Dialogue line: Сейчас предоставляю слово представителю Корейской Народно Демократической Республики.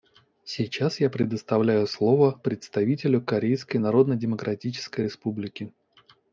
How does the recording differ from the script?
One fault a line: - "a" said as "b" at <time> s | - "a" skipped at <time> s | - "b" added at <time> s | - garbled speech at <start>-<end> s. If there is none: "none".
- "я" added at 1.0 s